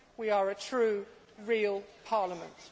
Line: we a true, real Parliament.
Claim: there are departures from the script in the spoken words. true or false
true